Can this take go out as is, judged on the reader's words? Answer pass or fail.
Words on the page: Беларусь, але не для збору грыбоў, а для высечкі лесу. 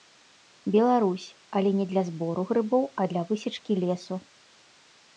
pass